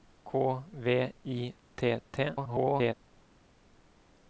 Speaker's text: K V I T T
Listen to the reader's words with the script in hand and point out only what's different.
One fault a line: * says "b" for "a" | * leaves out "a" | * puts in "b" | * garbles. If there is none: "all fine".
* garbles